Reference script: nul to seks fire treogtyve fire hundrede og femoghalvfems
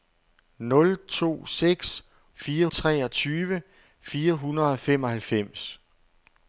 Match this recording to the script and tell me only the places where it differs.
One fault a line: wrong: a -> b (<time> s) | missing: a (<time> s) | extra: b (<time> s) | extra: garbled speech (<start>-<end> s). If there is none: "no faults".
no faults